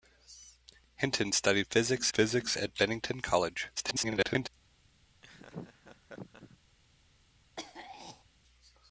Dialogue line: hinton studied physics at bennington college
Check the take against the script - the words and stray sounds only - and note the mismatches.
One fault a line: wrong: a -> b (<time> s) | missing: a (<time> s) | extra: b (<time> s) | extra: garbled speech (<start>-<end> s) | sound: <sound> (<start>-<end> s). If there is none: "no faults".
extra: physics (2.1 s)
extra: garbled speech (3.8-4.5 s)
sound: laugh (5.2-6.6 s)
sound: throat clearing (7.6-8.2 s)